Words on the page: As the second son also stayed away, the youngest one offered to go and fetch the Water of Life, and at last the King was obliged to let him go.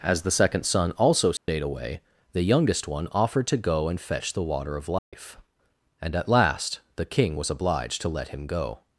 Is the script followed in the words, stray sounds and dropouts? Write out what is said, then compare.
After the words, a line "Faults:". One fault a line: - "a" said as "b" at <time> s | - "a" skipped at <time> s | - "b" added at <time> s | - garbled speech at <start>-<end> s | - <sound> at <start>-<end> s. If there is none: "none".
As the second son also stayed away, the youngest one offered to go and fetch the Water of Life, and at last the King was obliged to let him go.
Faults:
- dropout at 1.4-1.5 s
- dropout at 5.0-5.1 s